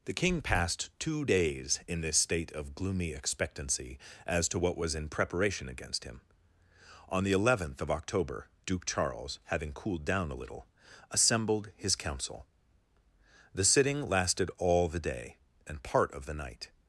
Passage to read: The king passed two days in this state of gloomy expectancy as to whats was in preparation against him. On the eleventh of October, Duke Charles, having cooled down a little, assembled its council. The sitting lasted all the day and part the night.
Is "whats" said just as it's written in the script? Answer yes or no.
no